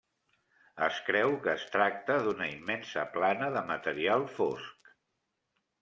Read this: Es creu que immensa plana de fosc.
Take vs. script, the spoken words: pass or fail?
fail